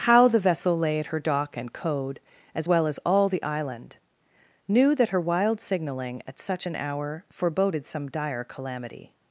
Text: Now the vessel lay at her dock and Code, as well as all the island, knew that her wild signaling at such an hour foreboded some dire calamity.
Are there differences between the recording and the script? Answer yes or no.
yes